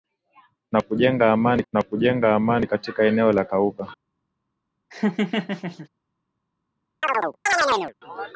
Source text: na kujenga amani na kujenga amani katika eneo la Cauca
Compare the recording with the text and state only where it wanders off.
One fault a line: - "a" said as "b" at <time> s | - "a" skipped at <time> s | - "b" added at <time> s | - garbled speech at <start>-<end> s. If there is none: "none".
none